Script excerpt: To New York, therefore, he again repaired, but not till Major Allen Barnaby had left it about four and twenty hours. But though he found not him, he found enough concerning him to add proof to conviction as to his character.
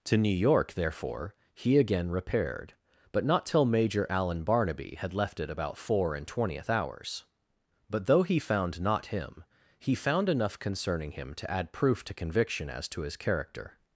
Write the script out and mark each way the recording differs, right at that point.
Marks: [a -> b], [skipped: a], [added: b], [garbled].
To New York, therefore, he again repaired, but not till Major Allen Barnaby had left it about four and [twenty -> twentieth] hours. But though he found not him, he found enough concerning him to add proof to conviction as to his character.